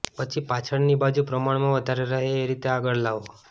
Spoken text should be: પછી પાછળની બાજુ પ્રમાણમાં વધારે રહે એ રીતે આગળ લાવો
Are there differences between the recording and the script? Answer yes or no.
no